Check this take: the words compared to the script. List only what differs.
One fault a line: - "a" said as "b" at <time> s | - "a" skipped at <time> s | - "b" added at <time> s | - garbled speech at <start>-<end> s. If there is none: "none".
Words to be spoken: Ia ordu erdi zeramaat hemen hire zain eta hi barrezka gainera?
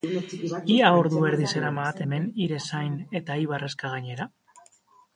none